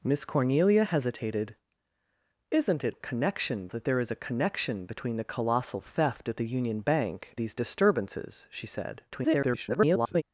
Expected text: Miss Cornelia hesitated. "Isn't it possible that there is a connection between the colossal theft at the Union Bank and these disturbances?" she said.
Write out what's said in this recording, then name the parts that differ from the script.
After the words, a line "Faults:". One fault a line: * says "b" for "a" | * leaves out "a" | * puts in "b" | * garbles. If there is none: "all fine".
Miss Cornelia hesitated. "Isn't it connection that there is a connection between the colossal theft at the Union Bank these disturbances?" she said. [garbled]
Faults:
* says "connection" for "possible"
* leaves out "and"
* garbles